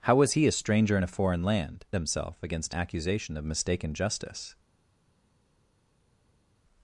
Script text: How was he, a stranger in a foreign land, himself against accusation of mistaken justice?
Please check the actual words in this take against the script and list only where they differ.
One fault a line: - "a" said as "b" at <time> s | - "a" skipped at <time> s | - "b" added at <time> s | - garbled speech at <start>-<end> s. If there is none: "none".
none